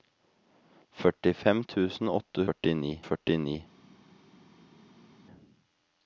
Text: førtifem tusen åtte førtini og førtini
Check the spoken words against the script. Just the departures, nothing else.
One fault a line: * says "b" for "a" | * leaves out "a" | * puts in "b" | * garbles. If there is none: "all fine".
all fine